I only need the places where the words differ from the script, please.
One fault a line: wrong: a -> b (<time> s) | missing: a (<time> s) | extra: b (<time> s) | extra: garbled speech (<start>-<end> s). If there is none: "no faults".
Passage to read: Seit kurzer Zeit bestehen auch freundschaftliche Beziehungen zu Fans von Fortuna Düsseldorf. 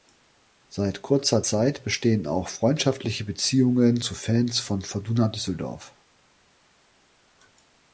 no faults